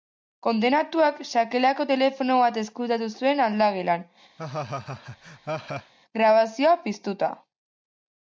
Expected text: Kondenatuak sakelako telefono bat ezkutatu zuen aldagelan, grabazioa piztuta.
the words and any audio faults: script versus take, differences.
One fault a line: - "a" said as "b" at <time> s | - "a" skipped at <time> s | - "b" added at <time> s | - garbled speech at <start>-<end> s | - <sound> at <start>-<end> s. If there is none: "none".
- laugh at 4.4-5.9 s